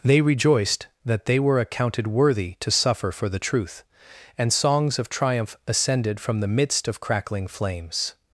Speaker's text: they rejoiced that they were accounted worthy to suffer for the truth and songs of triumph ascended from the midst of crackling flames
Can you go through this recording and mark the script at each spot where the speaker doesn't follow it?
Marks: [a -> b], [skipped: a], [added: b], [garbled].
they rejoiced that they were accounted worthy to suffer for the truth and songs of triumph ascended from the midst of crackling flames